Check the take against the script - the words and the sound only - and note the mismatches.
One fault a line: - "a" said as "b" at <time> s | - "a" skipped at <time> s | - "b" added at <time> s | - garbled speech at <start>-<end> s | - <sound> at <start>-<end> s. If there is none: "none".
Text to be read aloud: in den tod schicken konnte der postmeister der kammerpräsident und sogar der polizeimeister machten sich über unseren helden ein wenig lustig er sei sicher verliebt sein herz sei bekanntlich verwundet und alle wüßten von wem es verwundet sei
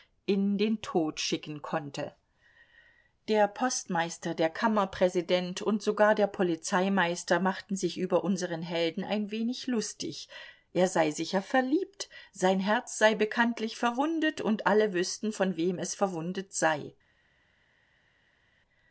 none